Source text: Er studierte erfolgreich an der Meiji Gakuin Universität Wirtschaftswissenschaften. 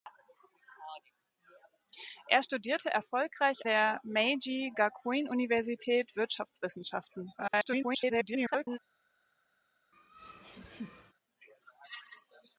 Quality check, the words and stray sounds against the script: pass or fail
fail